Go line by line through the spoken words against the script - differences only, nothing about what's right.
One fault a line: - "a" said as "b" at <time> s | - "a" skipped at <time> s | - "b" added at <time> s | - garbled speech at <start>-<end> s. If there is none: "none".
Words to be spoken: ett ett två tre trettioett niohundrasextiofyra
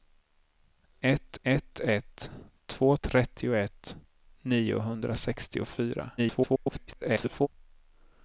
- "ett" added at 1.8 s
- "tre" skipped at 3.0 s
- garbled speech at 6.2-7.5 s